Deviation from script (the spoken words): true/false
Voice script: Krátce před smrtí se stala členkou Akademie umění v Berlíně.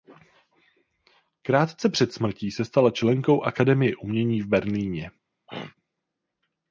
false